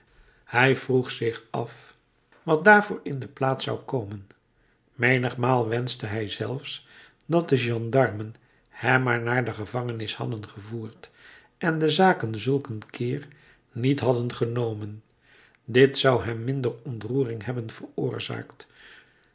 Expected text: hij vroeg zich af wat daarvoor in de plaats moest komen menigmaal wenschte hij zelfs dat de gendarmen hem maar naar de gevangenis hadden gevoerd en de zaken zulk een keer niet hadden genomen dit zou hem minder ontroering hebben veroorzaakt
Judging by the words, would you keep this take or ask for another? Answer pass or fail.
fail